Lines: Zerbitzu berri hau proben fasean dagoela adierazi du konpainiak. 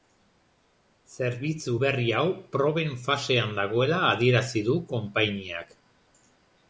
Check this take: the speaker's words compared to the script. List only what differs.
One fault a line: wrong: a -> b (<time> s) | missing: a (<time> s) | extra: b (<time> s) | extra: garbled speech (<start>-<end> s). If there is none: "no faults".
no faults